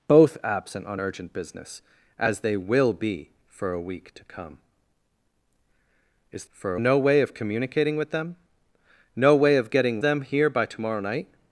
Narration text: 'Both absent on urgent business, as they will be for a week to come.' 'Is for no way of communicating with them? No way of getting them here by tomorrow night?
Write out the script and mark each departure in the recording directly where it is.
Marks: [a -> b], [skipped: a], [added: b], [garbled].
'Both absent on urgent business, as they will be for a week to come.' 'Is for no way of communicating with them? No way of getting them here by tomorrow night?